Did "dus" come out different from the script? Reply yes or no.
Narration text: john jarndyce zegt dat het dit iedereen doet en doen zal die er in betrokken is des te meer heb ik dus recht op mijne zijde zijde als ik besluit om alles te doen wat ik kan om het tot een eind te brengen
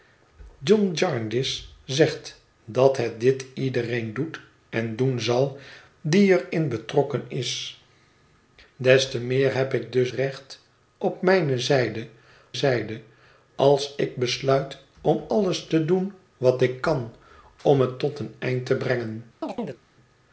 no